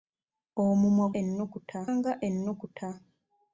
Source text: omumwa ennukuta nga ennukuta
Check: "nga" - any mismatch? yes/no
no